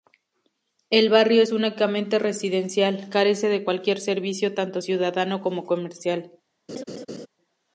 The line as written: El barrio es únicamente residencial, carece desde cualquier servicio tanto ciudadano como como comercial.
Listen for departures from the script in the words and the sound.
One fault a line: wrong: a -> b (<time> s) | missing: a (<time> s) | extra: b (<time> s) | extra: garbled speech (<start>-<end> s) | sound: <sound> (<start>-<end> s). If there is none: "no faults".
wrong: desde -> de (3.5 s)
missing: como (5.6 s)
sound: laugh (6.7-7.3 s)